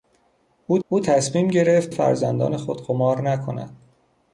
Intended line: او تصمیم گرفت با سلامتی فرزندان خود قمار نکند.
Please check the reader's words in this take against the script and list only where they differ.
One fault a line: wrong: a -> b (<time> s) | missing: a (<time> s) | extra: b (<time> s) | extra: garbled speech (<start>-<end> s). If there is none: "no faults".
extra: او (0.9 s)
missing: با سلامتی (1.9 s)